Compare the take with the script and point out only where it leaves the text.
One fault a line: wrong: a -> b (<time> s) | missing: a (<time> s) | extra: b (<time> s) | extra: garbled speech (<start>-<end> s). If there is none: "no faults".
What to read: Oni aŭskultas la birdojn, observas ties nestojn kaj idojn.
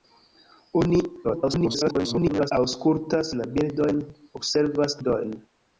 extra: garbled speech (1.2-2.5 s)
missing: ties nestojn kaj (5.0 s)